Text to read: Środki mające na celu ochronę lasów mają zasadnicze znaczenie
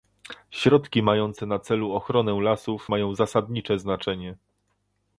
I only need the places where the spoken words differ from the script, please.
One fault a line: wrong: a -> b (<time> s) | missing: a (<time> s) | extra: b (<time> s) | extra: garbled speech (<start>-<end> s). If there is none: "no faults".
no faults